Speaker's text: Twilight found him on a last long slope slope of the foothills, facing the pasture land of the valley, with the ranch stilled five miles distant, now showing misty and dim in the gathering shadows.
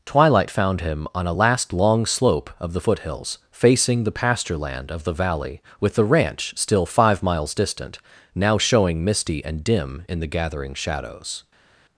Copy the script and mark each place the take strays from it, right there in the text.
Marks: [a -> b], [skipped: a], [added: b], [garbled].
Twilight found him on a last long slope [skipped: slope] of the foothills, facing the pasture land of the valley, with the ranch [stilled -> still] five miles distant, now showing misty and dim in the gathering shadows.